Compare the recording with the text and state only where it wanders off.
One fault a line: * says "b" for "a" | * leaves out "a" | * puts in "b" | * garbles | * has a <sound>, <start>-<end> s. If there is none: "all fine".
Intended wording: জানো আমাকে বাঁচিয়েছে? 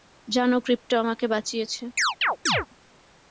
* puts in "ক্রিপ্টো"
* has a chirp, 2.0-2.7 s